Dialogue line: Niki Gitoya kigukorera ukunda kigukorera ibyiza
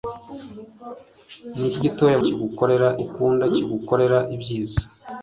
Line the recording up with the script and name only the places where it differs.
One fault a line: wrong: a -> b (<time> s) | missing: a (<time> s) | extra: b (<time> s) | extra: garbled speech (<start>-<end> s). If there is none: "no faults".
no faults